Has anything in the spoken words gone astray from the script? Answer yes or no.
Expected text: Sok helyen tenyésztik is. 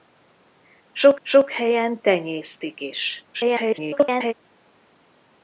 yes